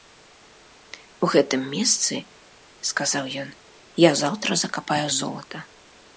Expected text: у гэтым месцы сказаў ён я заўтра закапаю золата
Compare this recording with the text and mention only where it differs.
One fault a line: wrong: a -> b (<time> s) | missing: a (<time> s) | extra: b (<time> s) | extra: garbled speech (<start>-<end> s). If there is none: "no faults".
no faults